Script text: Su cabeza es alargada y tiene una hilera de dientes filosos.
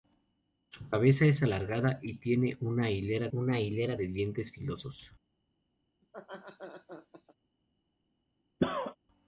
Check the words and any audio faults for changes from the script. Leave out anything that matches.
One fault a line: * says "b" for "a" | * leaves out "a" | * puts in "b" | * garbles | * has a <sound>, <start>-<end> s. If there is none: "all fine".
* puts in "una hilera"
* has a laugh, 6.0-7.3 s
* has a cough, 8.6-9.0 s